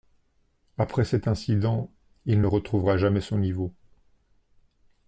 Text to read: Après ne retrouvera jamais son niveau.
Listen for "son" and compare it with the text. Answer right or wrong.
right